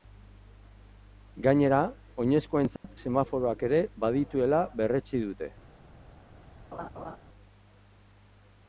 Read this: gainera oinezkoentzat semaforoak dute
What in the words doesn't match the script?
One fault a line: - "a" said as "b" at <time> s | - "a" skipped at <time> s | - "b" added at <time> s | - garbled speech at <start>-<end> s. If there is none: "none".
- "ere badituela berretsi" added at 3.7 s